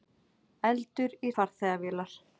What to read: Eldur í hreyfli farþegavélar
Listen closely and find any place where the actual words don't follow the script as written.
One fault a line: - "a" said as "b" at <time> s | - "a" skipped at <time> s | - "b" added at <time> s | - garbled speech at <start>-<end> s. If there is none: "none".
- "hreyfli" skipped at 1.3 s